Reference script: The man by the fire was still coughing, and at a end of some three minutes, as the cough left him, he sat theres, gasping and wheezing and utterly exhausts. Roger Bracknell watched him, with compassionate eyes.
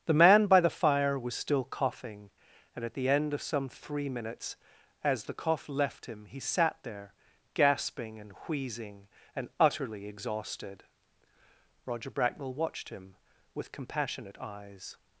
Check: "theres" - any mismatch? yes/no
yes